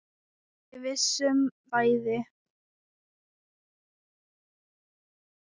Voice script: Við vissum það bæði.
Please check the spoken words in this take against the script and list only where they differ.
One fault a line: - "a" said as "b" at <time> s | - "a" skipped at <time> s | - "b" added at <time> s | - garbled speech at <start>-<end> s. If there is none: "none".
- "það" skipped at 1.4 s